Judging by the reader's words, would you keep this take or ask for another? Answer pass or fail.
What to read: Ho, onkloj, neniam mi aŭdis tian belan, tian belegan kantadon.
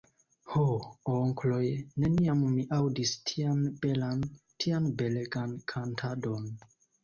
pass